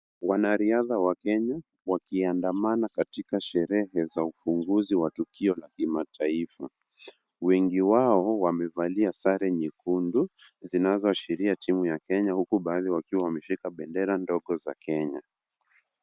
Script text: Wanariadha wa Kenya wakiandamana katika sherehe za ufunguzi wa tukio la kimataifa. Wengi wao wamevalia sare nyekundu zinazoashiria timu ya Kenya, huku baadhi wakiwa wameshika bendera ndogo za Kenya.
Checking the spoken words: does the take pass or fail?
pass